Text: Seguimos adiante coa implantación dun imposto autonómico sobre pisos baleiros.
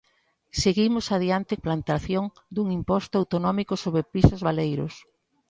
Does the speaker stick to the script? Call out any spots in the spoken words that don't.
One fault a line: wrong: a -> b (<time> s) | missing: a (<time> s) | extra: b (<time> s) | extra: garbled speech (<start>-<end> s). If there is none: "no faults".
missing: coa (1.5 s)